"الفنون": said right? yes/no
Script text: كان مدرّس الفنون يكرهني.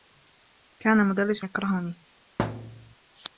no